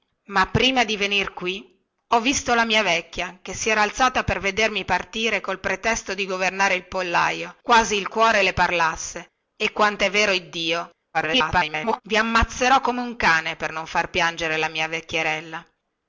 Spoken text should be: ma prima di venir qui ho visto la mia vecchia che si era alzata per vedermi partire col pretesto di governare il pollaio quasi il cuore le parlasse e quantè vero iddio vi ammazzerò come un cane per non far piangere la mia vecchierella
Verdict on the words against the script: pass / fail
fail